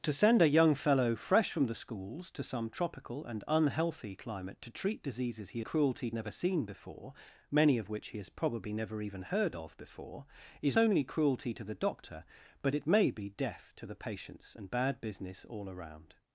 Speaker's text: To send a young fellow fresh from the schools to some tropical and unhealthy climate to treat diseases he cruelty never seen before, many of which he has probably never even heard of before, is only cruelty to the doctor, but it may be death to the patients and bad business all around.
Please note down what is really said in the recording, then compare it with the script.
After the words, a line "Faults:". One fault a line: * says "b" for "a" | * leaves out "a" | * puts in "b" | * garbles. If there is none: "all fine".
To send a young fellow fresh from the schools to some tropical and unhealthy climate to treat diseases he cruelty never seen before, many of which he has probably never even heard of before, is only cruelty to the doctor, but it may be death to the patients and bad business all around.
Faults:
all fine